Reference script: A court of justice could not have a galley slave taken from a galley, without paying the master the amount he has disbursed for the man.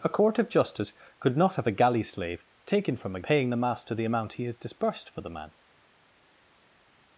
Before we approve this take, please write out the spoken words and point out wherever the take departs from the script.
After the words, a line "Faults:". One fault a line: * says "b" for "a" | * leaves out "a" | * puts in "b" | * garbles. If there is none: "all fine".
A court of justice could not have a galley slave taken from a paying the master the amount he has disbursed for the man.
Faults:
* leaves out "galley without"